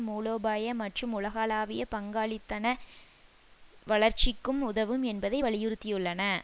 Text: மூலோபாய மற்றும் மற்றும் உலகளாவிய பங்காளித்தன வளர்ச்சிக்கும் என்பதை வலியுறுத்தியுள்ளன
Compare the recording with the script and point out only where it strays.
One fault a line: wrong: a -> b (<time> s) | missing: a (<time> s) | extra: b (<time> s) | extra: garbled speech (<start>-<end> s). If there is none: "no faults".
missing: மற்றும் (1.1 s)
extra: உதவும் (4.6 s)